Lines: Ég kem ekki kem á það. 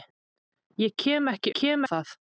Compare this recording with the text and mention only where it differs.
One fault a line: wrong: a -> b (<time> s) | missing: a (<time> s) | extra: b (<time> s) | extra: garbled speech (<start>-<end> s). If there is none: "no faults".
no faults